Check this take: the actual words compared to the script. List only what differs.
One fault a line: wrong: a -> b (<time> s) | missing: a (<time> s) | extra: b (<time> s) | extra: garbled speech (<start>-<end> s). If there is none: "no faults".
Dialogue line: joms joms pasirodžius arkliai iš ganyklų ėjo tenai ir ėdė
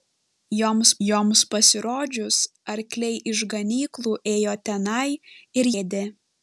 no faults